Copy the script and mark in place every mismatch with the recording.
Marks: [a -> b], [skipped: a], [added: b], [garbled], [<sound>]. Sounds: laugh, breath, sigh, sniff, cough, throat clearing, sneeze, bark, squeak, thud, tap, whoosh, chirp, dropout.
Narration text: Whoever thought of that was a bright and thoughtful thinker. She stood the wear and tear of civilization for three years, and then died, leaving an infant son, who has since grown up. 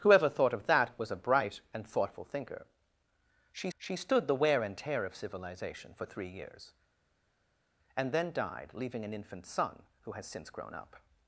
Whoever thought of that was a bright and thoughtful thinker. She [added: she] stood the wear and tear of civilization for three years, and then died, leaving an infant son, who has since grown up.